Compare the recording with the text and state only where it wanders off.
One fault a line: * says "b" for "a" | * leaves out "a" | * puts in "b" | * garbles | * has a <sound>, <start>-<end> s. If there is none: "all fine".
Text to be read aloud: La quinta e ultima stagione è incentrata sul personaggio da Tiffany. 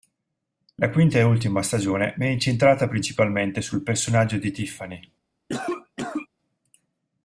* puts in "principalmente"
* says "di" for "da"
* has a cough, 5.5-6.3 s